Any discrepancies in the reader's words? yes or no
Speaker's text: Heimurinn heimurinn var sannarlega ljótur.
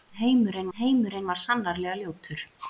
no